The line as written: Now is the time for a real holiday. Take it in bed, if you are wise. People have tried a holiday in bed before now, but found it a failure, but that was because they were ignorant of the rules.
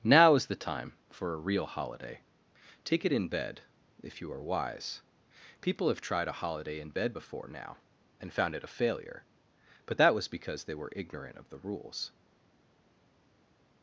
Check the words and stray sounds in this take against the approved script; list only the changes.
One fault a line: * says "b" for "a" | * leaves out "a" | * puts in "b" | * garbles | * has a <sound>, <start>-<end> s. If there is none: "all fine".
* says "and" for "but"